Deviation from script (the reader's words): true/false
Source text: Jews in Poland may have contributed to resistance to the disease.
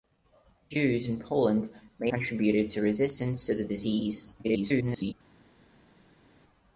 true